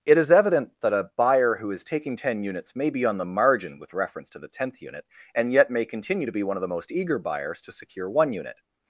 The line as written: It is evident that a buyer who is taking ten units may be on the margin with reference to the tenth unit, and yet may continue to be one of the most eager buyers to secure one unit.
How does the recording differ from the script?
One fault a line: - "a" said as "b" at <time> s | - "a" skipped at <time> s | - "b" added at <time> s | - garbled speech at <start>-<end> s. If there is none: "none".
none